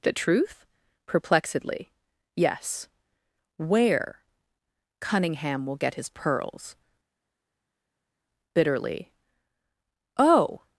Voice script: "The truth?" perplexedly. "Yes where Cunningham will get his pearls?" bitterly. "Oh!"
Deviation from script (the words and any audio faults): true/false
false